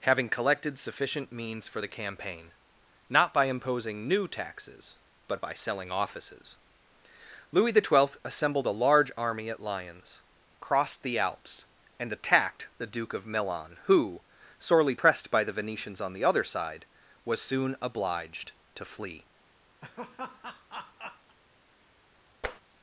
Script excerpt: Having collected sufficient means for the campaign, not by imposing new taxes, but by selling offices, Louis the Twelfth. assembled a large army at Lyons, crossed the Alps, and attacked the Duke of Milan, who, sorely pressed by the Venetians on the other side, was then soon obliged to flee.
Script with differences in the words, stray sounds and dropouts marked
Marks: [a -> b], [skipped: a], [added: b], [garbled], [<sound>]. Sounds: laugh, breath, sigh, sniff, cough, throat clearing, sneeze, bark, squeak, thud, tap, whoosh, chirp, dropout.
Having collected sufficient means for the campaign, not by imposing new taxes, but by selling offices, Louis the Twelfth. assembled a large army at Lyons, crossed the Alps, and attacked the Duke of Milan, who, sorely pressed by the Venetians on the other side, was [skipped: then] soon obliged to flee. [laugh] [tap]